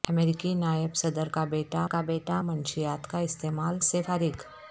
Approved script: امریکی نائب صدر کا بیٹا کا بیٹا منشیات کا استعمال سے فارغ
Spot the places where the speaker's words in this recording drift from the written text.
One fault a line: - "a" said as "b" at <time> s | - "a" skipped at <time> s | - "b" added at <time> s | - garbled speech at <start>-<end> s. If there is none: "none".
none